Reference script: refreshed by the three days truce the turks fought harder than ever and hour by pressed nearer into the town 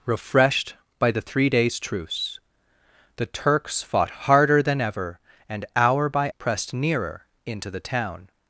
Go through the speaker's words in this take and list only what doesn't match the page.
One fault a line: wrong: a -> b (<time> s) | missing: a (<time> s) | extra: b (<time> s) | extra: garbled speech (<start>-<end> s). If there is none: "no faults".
no faults